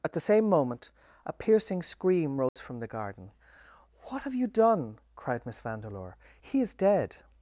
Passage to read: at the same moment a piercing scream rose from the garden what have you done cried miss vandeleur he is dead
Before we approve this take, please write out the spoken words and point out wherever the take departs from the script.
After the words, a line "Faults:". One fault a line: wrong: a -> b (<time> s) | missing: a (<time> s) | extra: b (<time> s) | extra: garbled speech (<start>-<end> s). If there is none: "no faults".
at the same moment a piercing scream rose from the garden what have you done cried miss vandeleur he is dead
Faults:
no faults